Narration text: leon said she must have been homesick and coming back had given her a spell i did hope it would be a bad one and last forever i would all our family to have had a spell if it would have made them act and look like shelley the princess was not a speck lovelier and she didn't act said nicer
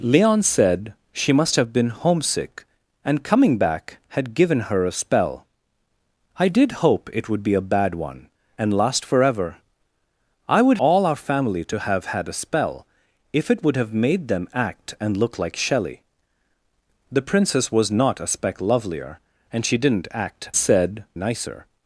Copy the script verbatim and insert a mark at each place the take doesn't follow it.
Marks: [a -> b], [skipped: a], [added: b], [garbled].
leon said she must have been homesick and coming back had given her a spell i did hope it would be a bad one and last forever i would all our family to have had a spell if it would have made them act and look like shelley the princess was not a speck lovelier and she didn't act said nicer